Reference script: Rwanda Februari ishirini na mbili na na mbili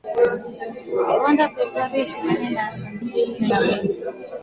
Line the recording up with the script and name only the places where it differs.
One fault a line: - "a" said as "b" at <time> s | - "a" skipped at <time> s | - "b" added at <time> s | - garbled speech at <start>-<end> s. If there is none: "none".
none